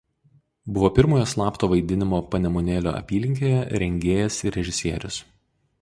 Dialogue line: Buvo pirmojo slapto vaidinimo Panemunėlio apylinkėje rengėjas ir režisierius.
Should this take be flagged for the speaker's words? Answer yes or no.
no